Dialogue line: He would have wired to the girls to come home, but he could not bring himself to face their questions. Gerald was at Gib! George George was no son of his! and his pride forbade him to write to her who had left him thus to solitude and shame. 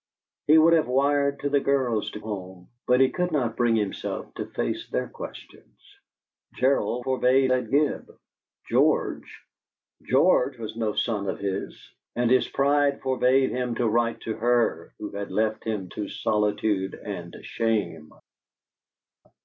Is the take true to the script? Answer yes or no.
no